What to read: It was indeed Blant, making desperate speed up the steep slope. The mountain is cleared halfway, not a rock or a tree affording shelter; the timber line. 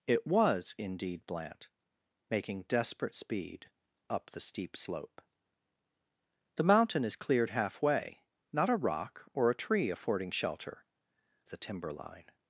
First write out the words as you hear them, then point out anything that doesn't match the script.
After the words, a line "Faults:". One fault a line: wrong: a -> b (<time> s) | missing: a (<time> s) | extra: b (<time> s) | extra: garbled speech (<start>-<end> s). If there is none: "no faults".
It was indeed Blant, making desperate speed up the steep slope. The mountain is cleared halfway, not a rock or a tree affording shelter; the timber line.
Faults:
no faults